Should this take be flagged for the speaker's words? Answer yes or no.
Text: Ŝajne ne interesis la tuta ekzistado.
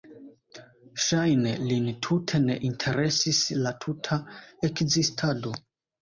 yes